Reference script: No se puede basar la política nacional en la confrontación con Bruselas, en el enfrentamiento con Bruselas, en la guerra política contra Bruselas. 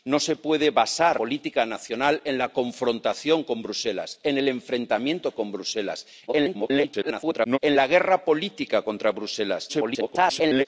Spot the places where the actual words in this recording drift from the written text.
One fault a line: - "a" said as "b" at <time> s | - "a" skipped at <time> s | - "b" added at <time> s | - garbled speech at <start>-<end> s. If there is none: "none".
- "la" skipped at 1.2 s
- garbled speech at 6.3-7.6 s
- garbled speech at 9.7-10.7 s